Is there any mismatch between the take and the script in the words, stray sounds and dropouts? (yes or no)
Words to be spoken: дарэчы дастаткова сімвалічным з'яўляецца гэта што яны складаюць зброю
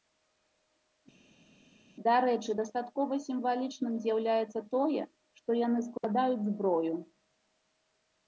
yes